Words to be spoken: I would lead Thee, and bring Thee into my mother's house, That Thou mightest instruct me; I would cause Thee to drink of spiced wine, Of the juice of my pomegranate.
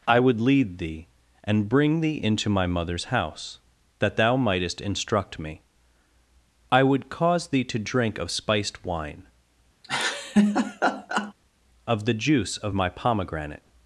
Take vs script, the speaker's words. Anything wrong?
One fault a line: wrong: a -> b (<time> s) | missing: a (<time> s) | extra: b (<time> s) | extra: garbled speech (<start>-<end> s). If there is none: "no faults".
no faults